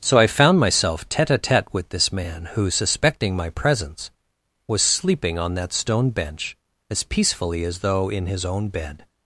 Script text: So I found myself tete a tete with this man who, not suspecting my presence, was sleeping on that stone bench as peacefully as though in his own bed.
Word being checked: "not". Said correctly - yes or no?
no